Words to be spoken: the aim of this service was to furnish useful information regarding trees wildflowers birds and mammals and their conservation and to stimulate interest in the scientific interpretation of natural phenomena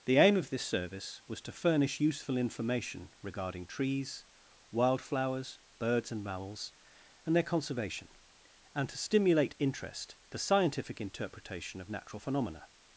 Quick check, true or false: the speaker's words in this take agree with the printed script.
false